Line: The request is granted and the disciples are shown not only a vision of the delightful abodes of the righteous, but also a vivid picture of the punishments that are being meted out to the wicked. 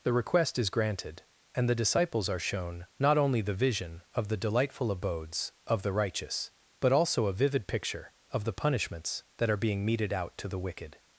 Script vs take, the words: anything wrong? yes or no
yes